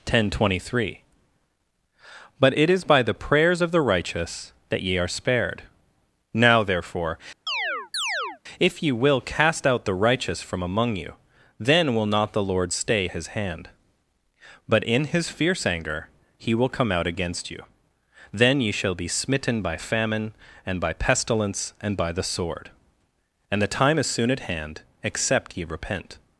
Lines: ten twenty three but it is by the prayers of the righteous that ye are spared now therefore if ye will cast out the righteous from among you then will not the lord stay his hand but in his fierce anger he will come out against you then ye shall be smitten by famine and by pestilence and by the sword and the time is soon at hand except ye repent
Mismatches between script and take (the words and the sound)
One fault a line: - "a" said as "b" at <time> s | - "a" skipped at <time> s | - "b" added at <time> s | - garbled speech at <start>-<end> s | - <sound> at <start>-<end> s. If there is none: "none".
- chirp at 7.5-8.4 s